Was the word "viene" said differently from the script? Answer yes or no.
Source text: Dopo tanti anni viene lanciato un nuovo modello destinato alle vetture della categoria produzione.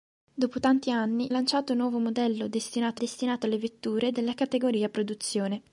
yes